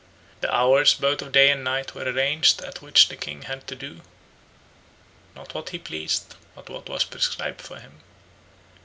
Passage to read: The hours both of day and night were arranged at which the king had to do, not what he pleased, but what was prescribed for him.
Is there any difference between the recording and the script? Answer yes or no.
no